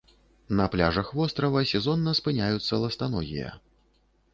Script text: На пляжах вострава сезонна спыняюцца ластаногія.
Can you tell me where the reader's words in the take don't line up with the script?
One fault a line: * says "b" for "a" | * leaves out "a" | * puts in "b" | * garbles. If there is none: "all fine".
all fine